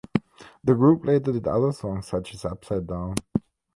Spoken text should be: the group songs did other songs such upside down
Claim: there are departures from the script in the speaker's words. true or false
true